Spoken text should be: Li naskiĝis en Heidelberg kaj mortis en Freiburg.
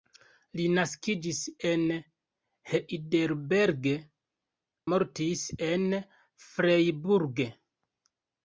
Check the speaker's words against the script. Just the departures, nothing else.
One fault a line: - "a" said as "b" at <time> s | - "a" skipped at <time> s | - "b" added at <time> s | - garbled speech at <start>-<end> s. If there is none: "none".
- "kaj" skipped at 3.9 s